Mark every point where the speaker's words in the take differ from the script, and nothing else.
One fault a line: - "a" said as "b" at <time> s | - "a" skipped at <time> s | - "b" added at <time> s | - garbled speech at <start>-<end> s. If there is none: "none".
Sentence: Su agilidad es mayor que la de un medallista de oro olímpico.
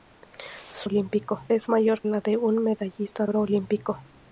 - "agilidad" said as "olímpico" at 0.8 s
- "que" skipped at 2.0 s
- "de" skipped at 3.3 s